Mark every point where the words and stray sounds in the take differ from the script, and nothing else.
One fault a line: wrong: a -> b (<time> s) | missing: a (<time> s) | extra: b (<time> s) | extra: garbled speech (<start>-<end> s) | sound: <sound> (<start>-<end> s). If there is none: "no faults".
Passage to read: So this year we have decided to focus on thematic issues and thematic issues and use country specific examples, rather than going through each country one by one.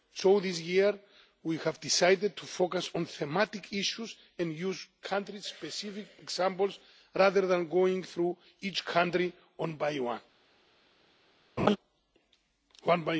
missing: thematic issues and (4.5 s)
sound: laugh (11.6-11.8 s)